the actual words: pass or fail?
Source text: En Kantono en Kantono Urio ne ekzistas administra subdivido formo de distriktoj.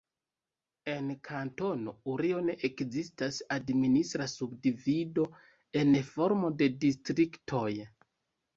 fail